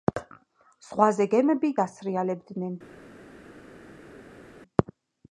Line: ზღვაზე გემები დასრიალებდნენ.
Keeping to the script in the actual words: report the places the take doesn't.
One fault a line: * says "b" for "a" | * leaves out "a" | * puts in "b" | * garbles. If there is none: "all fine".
all fine